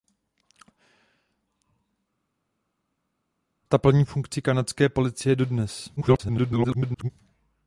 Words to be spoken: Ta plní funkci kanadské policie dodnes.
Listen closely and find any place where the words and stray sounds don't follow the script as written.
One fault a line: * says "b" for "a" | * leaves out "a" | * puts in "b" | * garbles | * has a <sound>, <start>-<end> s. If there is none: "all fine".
* garbles